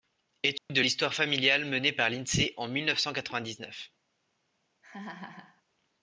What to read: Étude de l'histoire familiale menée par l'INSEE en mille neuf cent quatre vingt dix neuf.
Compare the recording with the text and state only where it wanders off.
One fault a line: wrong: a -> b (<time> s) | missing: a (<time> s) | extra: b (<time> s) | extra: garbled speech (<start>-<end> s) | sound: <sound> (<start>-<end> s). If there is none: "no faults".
sound: dropout (0.6-0.7 s)
sound: laugh (4.8-5.6 s)